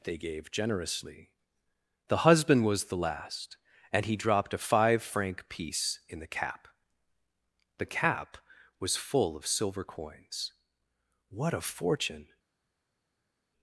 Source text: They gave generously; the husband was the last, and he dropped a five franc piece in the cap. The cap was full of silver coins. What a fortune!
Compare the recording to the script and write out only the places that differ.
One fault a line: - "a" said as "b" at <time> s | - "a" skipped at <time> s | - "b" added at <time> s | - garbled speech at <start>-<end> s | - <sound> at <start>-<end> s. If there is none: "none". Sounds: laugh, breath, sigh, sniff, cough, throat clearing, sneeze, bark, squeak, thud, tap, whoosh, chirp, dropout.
none